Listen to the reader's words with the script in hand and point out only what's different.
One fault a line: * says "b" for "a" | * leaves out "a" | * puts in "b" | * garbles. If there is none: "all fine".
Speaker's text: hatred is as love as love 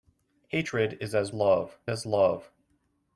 all fine